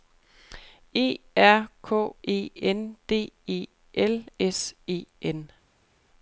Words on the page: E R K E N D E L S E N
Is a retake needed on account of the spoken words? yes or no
no